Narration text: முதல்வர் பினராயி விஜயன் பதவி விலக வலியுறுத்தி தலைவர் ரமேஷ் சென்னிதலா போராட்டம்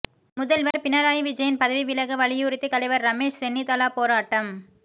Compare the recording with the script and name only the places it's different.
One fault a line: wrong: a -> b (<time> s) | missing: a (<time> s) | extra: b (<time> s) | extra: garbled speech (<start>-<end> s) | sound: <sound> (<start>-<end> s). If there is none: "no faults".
sound: dropout (0.7-0.7 s)